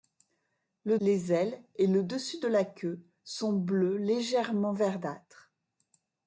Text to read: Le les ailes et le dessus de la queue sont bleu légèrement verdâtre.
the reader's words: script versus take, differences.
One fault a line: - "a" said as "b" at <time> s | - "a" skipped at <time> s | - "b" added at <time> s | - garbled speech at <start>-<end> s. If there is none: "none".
none